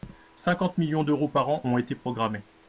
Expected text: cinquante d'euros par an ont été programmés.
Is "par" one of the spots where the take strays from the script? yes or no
no